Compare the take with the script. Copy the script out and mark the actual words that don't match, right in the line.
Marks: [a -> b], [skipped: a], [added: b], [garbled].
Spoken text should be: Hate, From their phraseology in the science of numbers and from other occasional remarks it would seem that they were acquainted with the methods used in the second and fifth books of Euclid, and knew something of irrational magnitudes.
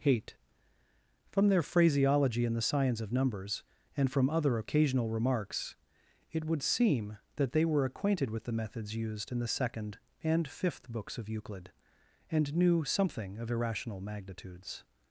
Hate, From their phraseology in the science of numbers and from other occasional remarks it would seem that they were acquainted with the methods used in the second and fifth books of Euclid, and knew something of irrational magnitudes.